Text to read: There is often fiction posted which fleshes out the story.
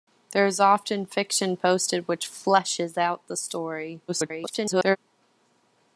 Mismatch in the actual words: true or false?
true